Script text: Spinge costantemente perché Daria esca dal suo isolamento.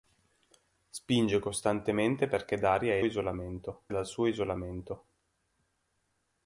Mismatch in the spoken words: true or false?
true